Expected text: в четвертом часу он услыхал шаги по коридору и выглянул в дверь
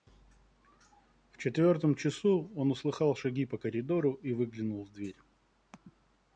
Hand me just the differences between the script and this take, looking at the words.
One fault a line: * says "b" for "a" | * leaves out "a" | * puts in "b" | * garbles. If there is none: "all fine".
all fine